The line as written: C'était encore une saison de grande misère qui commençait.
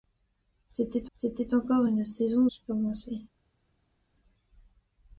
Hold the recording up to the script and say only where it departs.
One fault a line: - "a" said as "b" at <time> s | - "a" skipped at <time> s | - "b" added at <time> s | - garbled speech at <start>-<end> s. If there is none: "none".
- "c'était" added at 1.1 s
- "de grande misère" skipped at 2.5 s